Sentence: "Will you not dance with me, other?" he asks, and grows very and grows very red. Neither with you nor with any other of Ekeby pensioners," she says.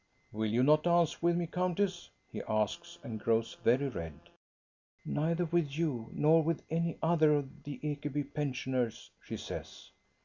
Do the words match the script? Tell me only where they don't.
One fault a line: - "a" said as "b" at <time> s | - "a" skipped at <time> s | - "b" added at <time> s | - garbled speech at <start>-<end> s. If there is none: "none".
- "other" said as "countess" at 1.4 s
- "and grows very" skipped at 3.9 s
- "the" added at 7.6 s